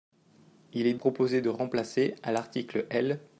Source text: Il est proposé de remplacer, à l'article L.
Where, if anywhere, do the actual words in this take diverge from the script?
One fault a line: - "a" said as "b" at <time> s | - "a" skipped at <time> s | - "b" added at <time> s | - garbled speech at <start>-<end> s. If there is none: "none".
none